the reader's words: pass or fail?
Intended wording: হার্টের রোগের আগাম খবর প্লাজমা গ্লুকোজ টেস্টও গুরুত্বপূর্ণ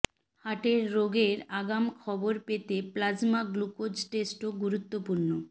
fail